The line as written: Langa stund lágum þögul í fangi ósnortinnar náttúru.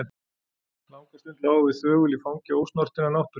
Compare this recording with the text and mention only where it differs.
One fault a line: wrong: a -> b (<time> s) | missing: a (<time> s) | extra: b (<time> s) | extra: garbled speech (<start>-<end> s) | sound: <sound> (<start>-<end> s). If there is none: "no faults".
extra: við (1.7 s)